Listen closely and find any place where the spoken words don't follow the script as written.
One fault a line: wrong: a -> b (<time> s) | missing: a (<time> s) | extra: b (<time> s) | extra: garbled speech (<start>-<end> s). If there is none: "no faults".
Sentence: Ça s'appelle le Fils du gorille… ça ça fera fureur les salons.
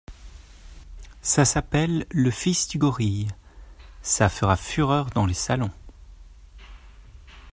missing: ça (4.3 s)
extra: dans (5.1 s)